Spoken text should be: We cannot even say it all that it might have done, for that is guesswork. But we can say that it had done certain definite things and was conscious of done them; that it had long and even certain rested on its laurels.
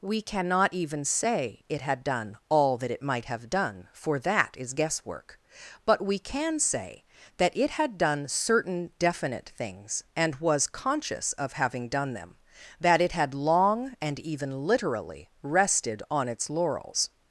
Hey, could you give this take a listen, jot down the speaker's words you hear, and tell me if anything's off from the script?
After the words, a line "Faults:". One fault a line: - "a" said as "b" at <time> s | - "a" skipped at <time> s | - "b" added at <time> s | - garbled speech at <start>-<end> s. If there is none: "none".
We cannot even say it had done all that it might have done, for that is guesswork. But we can say that it had done certain definite things and was conscious of having done them; that it had long and even literally rested on its laurels.
Faults:
- "had done" added at 1.8 s
- "having" added at 11.5 s
- "certain" said as "literally" at 14.7 s